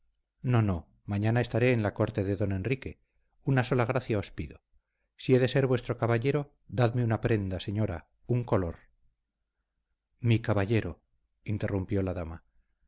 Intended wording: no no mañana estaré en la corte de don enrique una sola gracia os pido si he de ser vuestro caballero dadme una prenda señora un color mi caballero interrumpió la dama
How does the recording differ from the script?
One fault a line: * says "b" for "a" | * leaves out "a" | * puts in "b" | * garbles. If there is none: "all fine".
all fine